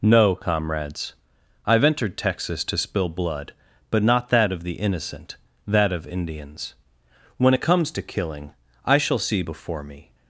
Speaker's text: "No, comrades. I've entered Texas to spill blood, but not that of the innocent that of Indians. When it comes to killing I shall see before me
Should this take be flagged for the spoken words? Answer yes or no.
no